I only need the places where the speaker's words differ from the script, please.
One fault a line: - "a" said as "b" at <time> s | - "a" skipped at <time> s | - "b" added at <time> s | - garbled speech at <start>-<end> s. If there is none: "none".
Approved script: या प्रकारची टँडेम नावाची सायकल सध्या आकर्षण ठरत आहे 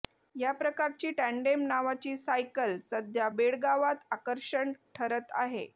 - "बेळगावात" added at 3.3 s